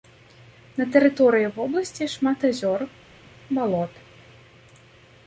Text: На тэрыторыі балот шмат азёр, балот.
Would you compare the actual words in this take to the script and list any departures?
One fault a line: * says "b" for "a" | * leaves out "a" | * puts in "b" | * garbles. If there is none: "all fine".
* says "вобласці" for "балот"